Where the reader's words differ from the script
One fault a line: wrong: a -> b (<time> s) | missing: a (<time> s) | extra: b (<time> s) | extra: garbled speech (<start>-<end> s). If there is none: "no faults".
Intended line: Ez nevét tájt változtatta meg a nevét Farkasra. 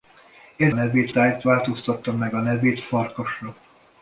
no faults